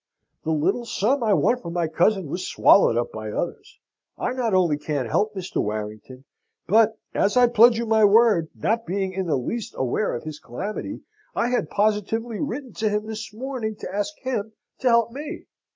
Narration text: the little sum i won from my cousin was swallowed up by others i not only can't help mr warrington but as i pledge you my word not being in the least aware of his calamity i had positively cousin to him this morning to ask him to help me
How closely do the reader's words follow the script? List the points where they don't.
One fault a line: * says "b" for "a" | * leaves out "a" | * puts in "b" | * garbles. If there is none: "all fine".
* says "written" for "cousin"